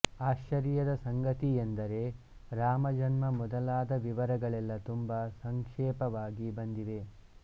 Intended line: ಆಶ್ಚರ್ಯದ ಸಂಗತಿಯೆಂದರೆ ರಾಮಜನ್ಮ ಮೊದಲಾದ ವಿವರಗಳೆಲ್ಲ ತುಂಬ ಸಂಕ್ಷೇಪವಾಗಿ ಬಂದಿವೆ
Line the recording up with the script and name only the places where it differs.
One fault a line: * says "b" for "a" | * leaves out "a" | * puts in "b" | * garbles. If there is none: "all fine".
all fine